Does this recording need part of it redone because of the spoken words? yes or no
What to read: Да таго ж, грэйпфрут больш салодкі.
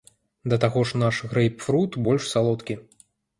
yes